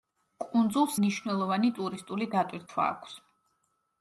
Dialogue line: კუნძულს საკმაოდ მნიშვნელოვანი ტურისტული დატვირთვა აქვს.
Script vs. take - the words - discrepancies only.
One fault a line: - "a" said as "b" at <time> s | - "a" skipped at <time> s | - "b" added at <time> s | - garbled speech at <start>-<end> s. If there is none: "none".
- "საკმაოდ" skipped at 0.9 s